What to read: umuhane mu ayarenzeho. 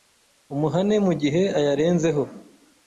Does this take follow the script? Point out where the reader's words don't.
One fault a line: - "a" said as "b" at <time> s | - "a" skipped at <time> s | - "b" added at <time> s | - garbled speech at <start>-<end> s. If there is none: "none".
- "gihe" added at 1.2 s